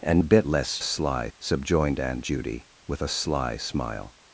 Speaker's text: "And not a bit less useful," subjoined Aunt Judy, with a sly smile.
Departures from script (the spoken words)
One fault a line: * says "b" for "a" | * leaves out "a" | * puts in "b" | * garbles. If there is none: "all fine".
* leaves out "not"
* says "sly" for "useful"